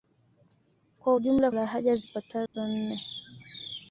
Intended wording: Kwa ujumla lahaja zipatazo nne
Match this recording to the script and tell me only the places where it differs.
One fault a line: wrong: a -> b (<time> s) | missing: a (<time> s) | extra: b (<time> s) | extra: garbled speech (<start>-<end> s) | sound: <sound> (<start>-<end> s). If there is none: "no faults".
sound: dropout (2.5-2.5 s)